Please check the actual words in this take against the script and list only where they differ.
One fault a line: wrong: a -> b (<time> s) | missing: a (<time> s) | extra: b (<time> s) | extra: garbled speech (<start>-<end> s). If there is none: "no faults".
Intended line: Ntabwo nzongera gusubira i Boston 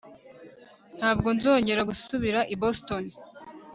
no faults